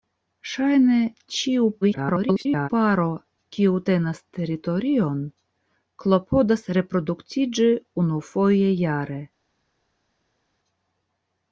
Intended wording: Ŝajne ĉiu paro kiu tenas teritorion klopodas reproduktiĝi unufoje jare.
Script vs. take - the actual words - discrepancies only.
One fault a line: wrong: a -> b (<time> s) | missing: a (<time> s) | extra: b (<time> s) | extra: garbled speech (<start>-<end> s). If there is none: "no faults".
extra: garbled speech (1.8-2.7 s)